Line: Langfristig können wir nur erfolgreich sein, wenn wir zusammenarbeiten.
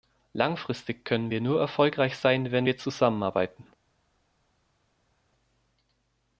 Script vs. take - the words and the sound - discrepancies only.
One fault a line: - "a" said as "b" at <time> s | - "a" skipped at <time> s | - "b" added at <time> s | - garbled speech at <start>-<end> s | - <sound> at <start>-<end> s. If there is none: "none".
none